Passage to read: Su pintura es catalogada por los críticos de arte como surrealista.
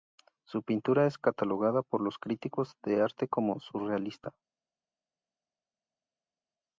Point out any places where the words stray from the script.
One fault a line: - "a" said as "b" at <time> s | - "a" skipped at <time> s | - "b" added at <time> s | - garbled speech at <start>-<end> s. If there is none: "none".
none